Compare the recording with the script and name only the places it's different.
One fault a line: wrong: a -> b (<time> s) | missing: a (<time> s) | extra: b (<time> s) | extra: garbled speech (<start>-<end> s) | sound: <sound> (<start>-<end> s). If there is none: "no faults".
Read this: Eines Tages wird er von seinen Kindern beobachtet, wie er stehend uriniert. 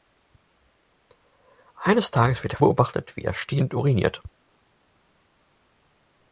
missing: von seinen Kindern (2.6 s)